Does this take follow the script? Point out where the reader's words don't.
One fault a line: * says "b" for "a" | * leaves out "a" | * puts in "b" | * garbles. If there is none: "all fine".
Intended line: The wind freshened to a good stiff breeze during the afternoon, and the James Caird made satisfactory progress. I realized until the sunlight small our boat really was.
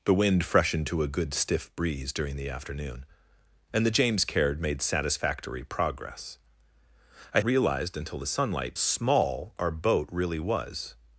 all fine